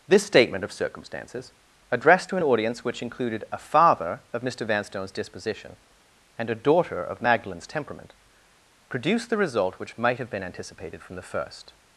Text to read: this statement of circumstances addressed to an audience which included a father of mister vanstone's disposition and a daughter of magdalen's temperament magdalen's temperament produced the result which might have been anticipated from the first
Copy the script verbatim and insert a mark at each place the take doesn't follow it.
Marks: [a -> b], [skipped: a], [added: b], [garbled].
this statement of circumstances addressed to an audience which included a father of mister vanstone's disposition and a daughter of magdalen's temperament [skipped: magdalen's temperament] produced the result which might have been anticipated from the first